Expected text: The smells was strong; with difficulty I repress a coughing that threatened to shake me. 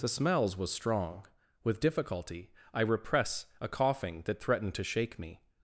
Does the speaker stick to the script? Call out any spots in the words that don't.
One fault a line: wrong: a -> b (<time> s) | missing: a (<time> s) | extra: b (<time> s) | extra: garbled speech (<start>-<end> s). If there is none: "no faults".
no faults